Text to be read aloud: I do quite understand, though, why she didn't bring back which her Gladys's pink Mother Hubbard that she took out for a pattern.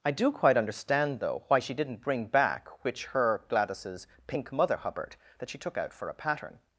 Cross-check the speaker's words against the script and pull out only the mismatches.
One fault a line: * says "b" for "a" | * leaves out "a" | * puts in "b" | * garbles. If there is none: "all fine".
all fine